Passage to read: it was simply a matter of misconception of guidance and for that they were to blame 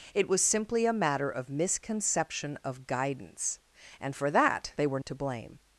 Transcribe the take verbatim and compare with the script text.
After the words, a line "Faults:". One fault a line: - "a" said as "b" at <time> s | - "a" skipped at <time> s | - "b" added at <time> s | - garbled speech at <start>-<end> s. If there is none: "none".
it was simply a matter of misconception of guidance and for that they were to blame
Faults:
none